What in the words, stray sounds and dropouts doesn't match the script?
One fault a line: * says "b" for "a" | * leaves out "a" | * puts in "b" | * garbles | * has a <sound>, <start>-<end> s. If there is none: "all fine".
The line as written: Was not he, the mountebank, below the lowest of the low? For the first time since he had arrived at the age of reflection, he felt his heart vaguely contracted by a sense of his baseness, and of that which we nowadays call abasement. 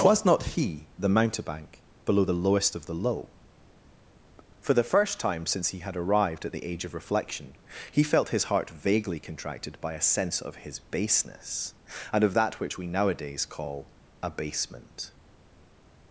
all fine